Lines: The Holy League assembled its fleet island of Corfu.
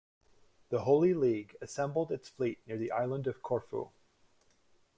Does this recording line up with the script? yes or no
no